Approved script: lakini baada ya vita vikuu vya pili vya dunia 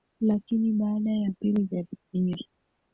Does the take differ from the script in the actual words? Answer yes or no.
yes